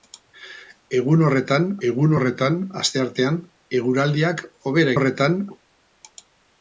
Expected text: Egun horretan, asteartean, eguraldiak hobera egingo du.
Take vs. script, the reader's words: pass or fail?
fail